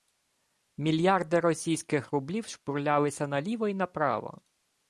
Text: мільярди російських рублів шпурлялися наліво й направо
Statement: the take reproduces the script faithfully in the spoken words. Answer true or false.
true